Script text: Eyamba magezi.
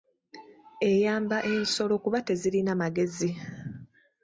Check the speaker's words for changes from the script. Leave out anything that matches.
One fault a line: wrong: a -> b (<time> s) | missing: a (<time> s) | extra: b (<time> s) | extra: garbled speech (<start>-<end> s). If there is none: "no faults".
extra: ensolo kuba tezirina (1.5 s)